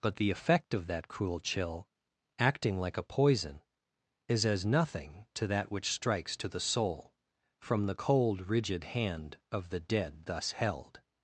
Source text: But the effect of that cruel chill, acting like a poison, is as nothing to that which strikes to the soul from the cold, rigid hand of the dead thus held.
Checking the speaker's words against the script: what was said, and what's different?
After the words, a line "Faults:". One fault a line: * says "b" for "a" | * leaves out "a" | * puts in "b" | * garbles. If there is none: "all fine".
But the effect of that cruel chill, acting like a poison, is as nothing to that which strikes to the soul from the cold, rigid hand of the dead thus held.
Faults:
all fine